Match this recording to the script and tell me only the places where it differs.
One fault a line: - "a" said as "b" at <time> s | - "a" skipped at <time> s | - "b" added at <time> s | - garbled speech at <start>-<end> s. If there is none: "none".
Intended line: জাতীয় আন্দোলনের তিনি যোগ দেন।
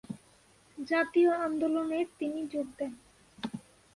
none